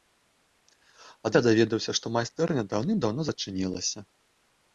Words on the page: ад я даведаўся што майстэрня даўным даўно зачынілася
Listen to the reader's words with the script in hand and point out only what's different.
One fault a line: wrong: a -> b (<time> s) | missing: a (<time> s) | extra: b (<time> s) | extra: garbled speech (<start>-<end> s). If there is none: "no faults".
no faults